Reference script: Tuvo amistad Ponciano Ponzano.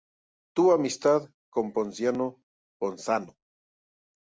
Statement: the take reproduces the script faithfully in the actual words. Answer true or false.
false